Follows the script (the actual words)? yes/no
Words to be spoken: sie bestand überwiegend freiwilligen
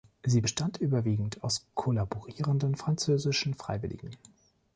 no